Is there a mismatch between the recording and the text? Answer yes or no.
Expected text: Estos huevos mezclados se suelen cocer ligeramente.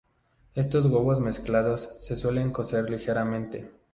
no